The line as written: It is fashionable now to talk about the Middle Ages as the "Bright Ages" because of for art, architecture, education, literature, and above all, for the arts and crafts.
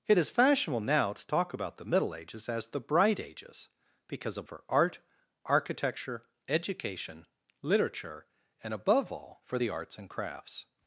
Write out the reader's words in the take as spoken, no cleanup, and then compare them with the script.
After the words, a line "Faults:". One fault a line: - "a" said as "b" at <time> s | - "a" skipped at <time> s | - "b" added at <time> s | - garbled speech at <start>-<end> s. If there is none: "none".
It is fashionable now to talk about the Middle Ages as the "Bright Ages" because of for art, architecture, education, literature, and above all, for the arts and crafts.
Faults:
none